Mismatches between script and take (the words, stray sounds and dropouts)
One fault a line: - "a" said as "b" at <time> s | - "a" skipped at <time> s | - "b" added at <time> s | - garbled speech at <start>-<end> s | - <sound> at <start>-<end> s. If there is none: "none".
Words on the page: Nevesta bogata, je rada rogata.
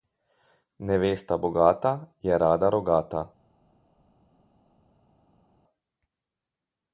none